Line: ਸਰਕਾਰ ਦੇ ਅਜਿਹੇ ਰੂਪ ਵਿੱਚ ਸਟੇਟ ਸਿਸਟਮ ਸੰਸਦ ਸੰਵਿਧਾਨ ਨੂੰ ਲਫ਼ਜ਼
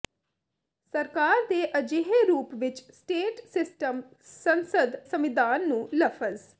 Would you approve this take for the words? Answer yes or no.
yes